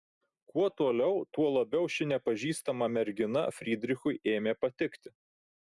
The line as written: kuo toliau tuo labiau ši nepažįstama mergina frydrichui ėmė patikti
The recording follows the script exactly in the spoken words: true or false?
true